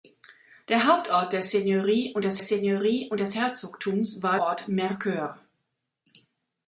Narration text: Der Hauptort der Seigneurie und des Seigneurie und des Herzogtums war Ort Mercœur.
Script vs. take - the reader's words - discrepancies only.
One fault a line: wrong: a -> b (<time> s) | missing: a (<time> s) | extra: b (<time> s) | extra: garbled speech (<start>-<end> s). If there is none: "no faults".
no faults